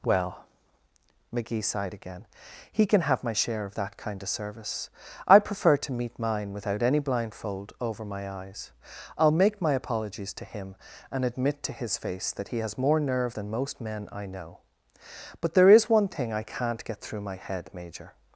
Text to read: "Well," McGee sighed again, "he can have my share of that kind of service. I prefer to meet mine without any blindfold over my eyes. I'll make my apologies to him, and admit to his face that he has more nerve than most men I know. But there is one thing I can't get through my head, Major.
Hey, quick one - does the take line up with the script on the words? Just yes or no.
yes